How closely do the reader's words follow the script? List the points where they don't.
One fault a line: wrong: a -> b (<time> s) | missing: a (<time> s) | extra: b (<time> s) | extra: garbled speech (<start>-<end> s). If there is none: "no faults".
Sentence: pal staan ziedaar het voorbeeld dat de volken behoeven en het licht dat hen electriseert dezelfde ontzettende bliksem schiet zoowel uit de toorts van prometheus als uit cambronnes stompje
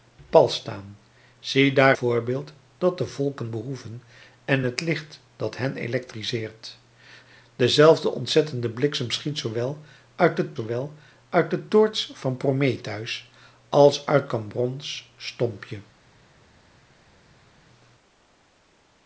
missing: het (1.9 s)
extra: zoowel uit de (10.5 s)